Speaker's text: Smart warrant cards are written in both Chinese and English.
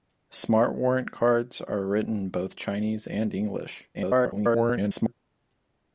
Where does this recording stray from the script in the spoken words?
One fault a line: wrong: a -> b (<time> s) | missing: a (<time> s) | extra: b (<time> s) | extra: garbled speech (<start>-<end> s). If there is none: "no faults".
extra: garbled speech (3.9-5.1 s)